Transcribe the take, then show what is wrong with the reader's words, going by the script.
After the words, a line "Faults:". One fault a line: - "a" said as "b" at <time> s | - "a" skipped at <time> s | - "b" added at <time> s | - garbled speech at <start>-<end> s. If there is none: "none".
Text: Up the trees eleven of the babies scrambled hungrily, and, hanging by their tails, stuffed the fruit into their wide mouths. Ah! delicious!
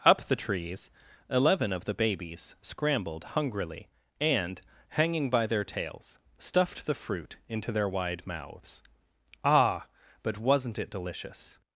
Up the trees eleven of the babies scrambled hungrily, and, hanging by their tails, stuffed the fruit into their wide mouths. Ah! but wasn't it delicious!
Faults:
- "but wasn't it" added at 10.2 s